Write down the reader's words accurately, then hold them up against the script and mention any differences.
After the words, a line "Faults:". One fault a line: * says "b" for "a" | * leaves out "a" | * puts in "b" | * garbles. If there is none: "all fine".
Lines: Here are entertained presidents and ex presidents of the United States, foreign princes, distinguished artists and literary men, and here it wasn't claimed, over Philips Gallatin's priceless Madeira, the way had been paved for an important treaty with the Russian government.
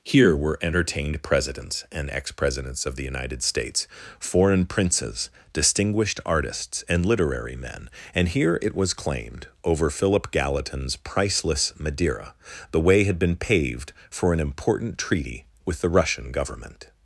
Here were entertained presidents and ex presidents of the United States, foreign princes, distinguished artists and literary men, and here it was claimed, over Philip Gallatin's priceless Madeira, the way had been paved for an important treaty with the Russian government.
Faults:
* says "were" for "are"
* says "was" for "wasn't"
* says "Philip" for "Philips"